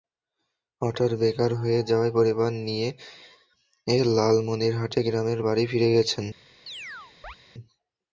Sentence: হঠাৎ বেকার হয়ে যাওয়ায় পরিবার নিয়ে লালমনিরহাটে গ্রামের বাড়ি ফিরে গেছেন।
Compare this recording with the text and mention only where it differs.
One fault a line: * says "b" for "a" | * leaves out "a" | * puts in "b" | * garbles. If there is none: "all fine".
all fine